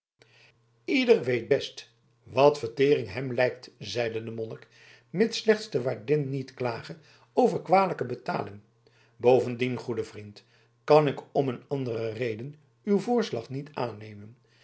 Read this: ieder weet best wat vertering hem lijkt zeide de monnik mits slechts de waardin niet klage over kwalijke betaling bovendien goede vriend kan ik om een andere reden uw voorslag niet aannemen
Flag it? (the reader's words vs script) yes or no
no